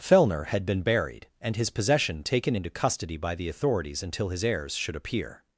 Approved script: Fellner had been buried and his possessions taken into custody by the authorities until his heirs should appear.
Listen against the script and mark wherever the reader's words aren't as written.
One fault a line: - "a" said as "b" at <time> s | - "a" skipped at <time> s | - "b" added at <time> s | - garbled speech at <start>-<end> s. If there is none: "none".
- "possessions" said as "possession" at 1.7 s